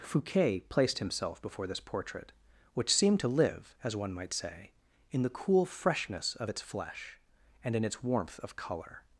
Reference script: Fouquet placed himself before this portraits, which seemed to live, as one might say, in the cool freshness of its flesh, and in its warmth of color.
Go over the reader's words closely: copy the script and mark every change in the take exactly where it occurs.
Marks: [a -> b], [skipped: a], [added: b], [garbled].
Fouquet placed himself before this [portraits, -> portrait] which seemed to live, as one might say, in the cool freshness of its flesh, and in its warmth of color.